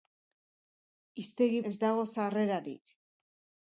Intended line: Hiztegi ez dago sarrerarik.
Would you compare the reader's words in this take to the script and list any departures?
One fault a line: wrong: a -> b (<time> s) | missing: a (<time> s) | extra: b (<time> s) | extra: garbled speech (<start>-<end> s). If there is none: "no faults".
no faults